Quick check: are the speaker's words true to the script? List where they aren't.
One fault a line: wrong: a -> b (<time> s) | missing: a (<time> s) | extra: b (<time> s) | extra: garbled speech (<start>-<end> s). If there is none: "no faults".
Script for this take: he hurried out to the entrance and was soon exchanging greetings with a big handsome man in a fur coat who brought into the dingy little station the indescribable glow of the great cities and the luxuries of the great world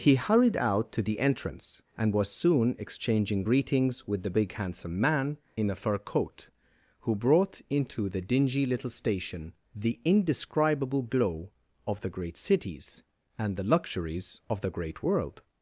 wrong: a -> the (4.2 s)